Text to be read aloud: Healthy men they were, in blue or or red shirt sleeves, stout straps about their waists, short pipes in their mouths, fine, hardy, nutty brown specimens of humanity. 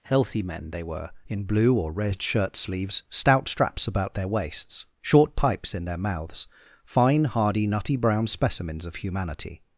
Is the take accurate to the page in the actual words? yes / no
no